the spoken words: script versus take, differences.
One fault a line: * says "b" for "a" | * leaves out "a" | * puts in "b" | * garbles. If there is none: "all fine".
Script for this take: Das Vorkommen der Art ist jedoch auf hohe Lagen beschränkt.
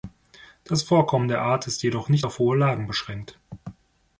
* puts in "nicht"